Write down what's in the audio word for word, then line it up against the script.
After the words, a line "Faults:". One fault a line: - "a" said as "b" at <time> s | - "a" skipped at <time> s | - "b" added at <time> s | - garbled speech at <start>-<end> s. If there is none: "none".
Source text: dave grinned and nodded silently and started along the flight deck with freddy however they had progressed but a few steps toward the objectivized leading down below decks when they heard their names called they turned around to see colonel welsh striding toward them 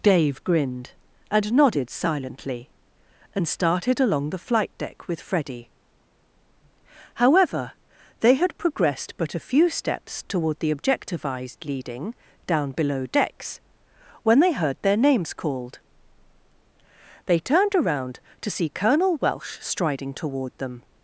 dave grinned and nodded silently and started along the flight deck with freddy however they had progressed but a few steps toward the objectivized leading down below decks when they heard their names called they turned around to see colonel welsh striding toward them
Faults:
none